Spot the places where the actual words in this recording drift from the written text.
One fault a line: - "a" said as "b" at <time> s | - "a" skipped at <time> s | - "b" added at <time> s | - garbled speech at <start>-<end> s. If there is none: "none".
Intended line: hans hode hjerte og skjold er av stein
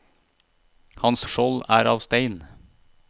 - "hode hjerte" skipped at 1.2 s